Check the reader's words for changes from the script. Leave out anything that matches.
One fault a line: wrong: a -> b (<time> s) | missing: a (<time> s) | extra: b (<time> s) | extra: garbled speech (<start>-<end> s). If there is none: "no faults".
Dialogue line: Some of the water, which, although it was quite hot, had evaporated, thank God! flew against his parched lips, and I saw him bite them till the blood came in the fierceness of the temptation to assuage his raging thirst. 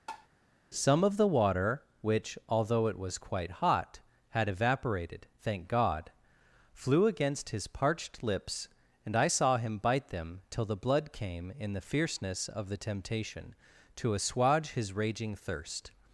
no faults